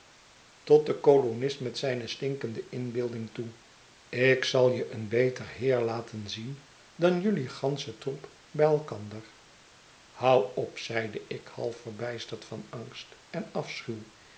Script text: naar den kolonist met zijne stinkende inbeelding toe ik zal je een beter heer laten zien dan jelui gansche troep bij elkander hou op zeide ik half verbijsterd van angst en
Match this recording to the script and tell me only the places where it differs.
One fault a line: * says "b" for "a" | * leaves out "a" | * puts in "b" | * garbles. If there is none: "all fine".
* says "tot" for "naar"